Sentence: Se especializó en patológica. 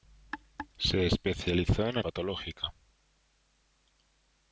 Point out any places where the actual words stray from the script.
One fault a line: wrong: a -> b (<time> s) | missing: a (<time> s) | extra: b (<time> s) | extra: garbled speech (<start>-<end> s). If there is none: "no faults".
no faults